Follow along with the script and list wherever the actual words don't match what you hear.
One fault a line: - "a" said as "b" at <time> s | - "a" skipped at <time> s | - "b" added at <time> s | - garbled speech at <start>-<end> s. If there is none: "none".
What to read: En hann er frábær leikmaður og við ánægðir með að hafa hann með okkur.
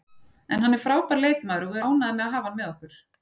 none